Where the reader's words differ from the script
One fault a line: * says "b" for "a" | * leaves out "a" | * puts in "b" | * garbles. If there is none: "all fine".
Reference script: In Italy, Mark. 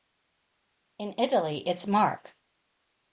* puts in "it's"